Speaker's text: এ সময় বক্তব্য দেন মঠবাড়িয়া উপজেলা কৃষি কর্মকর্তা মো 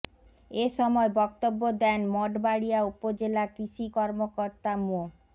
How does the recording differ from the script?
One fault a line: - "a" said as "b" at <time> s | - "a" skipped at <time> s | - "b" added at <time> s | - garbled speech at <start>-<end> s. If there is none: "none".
none